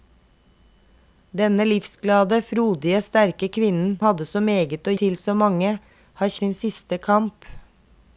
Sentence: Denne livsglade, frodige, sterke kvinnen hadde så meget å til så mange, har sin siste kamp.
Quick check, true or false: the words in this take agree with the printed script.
true